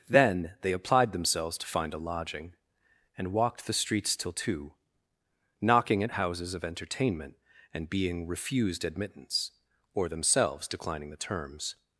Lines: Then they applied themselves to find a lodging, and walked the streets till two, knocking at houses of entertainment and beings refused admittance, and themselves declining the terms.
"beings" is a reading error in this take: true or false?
true